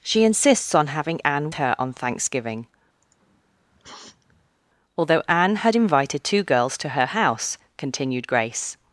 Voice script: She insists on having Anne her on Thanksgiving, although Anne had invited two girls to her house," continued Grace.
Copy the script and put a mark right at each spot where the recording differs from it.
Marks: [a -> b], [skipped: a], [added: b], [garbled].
She insists on having Anne her on Thanksgiving, although Anne had invited two girls to her house," continued Grace.